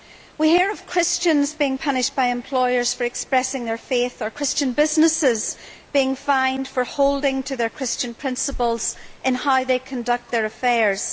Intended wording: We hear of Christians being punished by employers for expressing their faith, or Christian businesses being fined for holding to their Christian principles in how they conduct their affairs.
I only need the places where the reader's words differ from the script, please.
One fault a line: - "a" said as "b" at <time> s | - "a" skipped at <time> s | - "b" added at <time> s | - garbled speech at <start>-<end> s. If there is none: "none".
none